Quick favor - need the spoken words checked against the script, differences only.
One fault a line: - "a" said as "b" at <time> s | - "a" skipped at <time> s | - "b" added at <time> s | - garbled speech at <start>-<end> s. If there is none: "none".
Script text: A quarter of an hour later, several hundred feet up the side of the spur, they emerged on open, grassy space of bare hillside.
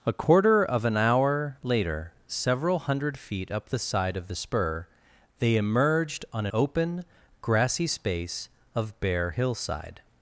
none